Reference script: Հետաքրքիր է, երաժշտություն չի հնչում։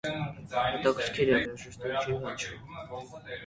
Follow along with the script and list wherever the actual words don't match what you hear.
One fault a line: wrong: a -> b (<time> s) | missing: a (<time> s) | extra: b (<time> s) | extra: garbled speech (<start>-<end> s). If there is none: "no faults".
no faults